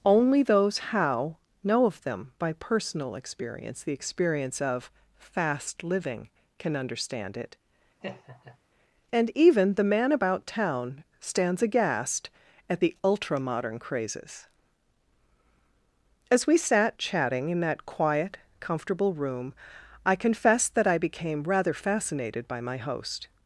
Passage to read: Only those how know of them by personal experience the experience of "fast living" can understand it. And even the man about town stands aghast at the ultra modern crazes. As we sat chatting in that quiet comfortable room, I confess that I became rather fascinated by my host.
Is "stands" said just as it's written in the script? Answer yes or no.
yes